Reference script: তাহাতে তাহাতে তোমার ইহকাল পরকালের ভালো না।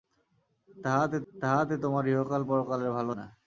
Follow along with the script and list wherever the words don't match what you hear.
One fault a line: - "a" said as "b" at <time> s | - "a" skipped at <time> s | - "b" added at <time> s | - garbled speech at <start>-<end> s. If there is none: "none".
none